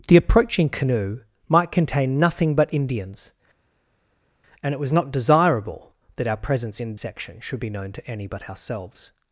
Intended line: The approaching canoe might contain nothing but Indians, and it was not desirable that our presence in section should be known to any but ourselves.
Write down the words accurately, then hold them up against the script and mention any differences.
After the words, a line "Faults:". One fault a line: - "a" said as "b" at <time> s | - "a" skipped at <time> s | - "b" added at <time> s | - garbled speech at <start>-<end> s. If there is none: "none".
The approaching canoe might contain nothing but Indians, and it was not desirable that our presence in section should be known to any but ourselves.
Faults:
none